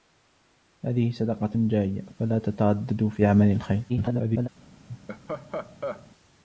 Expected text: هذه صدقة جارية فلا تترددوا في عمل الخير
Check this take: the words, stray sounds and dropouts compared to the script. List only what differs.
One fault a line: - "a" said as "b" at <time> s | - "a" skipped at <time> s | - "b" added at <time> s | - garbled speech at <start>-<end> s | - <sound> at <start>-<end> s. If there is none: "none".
- garbled speech at 3.9-4.5 s
- laugh at 4.9-6.1 s